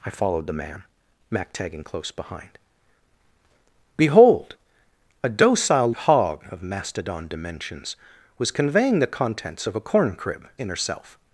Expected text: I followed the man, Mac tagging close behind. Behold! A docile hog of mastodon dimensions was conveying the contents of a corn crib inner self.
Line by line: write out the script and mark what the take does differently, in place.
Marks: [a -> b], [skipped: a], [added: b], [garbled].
I followed the man, Mac tagging close behind. Behold! A docile hog of mastodon dimensions was conveying the contents of a corn crib inner self.